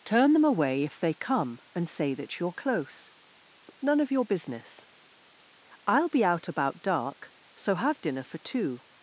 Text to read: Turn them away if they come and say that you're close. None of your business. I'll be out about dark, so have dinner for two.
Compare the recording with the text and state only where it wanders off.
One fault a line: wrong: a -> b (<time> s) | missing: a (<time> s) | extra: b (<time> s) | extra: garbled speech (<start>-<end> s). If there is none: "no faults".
no faults